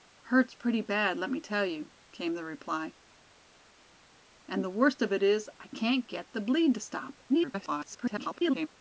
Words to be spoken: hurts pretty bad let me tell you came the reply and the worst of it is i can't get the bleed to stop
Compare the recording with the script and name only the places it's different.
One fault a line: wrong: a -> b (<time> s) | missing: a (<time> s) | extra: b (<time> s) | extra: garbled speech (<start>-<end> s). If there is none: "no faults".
extra: garbled speech (7.3-8.7 s)